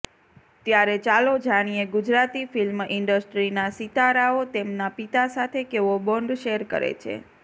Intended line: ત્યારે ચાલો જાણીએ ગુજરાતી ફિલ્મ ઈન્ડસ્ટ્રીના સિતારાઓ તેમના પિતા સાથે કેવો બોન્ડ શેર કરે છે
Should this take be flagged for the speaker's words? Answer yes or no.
no